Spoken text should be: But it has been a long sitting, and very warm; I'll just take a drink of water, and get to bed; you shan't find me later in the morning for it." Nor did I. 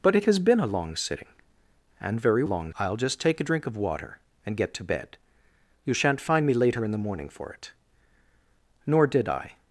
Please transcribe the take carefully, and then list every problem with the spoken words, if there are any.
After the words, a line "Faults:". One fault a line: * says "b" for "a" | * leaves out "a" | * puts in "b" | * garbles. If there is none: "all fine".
But it has been a long sitting, and very long; I'll just take a drink of water, and get to bed; you shan't find me later in the morning for it." Nor did I.
Faults:
* says "long" for "warm"